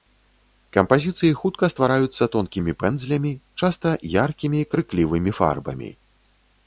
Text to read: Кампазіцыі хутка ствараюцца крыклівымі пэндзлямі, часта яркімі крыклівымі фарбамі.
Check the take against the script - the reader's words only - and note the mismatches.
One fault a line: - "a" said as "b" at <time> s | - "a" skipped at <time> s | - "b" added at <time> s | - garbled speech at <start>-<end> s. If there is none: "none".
- "крыклівымі" said as "тонкімі" at 2.4 s